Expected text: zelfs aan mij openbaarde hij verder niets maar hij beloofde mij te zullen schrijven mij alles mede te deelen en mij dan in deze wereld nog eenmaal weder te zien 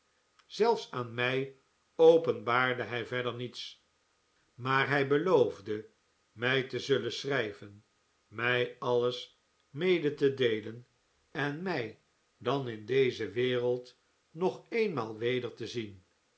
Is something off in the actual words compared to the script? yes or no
no